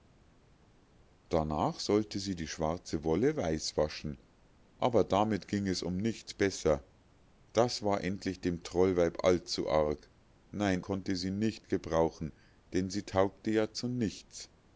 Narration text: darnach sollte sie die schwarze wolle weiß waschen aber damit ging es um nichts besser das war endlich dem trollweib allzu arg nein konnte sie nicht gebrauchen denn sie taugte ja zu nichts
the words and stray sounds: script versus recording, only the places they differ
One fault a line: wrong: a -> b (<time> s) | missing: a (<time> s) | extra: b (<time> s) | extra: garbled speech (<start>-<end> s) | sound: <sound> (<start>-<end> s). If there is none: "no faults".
no faults